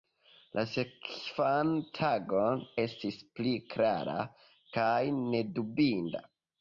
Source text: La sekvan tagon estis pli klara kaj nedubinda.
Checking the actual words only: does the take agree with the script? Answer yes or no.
yes